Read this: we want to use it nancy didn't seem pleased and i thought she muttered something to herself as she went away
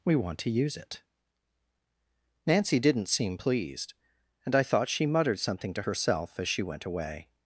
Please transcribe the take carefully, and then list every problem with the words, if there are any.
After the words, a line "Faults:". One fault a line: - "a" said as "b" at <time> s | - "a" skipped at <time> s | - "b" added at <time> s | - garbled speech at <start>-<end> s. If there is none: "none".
we want to use it nancy didn't seem pleased and i thought she muttered something to herself as she went away
Faults:
none